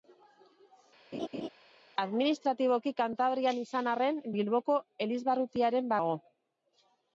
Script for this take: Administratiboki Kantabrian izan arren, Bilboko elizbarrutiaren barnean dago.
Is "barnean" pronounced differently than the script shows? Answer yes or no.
yes